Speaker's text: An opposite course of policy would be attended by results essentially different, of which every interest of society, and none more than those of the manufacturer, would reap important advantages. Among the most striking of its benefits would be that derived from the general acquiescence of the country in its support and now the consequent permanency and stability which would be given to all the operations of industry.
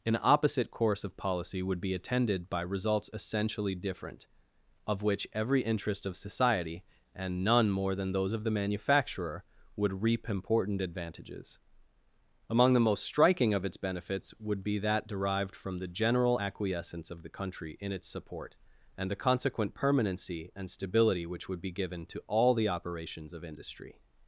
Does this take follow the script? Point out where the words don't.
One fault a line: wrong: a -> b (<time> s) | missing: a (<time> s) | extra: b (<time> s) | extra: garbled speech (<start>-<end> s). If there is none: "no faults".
missing: now (19.1 s)